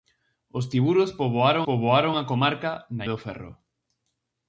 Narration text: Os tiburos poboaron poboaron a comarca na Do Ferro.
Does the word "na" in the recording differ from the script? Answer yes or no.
no